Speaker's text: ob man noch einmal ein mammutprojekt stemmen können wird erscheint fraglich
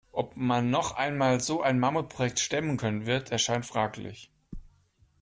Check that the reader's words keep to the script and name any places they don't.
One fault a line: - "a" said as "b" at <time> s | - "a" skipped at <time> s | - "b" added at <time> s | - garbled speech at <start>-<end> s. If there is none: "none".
- "so" added at 1.4 s